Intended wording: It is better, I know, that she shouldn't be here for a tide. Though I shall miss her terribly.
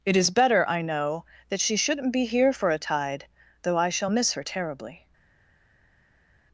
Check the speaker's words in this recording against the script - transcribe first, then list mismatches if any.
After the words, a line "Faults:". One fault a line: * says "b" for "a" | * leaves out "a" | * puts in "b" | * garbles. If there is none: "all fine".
It is better, I know, that she shouldn't be here for a tide. Though I shall miss her terribly.
Faults:
all fine